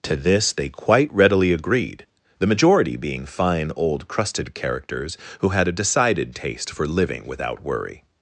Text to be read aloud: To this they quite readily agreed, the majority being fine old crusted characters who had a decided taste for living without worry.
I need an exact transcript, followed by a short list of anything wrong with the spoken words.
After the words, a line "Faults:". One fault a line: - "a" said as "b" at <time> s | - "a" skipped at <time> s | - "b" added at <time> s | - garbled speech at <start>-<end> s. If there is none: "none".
To this they quite readily agreed, the majority being fine old crusted characters who had a decided taste for living without worry.
Faults:
none